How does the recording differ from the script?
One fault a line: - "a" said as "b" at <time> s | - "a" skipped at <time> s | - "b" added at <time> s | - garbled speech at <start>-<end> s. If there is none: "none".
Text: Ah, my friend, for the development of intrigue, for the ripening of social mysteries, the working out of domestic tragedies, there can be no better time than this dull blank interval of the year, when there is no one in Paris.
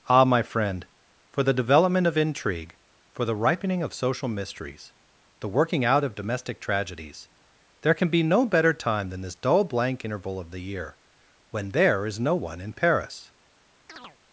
none